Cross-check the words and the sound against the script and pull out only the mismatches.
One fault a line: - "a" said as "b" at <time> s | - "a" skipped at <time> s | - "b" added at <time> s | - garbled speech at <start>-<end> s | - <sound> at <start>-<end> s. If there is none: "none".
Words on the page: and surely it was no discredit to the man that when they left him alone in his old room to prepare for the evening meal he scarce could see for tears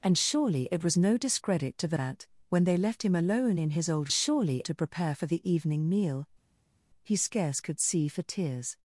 - "man" skipped at 2.0 s
- "room" said as "surely" at 4.1 s